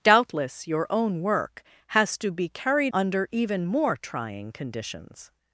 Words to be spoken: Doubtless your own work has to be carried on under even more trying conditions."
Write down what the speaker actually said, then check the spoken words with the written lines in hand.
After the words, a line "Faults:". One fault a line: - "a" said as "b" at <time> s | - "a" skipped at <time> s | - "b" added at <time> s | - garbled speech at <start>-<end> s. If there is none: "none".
Doubtless your own work has to be carried under even more trying conditions."
Faults:
- "on" skipped at 2.9 s